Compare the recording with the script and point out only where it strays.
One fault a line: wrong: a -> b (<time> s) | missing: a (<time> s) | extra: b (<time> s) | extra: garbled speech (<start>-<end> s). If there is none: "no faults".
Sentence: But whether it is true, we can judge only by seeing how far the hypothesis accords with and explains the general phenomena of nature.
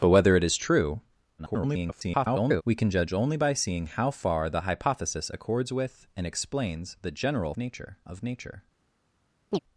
extra: garbled speech (1.4-2.6 s)
wrong: phenomena -> nature (7.6 s)